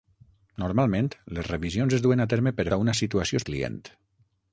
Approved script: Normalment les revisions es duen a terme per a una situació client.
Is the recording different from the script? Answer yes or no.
no